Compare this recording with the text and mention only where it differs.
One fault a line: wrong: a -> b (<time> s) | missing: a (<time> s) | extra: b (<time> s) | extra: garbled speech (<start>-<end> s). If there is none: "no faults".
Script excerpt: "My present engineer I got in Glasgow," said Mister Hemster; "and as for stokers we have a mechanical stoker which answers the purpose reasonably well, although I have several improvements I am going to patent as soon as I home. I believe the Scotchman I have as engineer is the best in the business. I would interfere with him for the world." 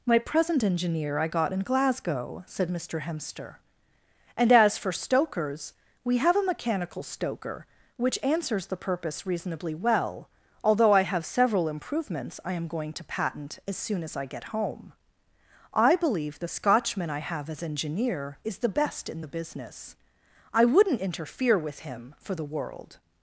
extra: get (14.2 s)
wrong: would -> wouldn't (20.6 s)